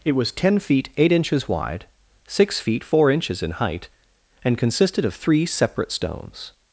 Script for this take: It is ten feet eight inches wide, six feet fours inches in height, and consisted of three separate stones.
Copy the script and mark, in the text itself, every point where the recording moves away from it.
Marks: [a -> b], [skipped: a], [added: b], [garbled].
It [is -> was] ten feet eight inches wide, six feet [fours -> four] inches in height, and consisted of three separate stones.